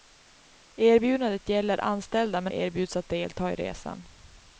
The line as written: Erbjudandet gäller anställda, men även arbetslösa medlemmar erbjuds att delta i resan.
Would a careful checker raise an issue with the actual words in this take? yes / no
yes